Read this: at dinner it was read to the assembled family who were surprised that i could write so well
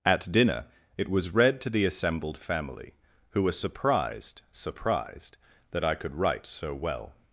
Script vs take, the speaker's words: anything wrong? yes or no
yes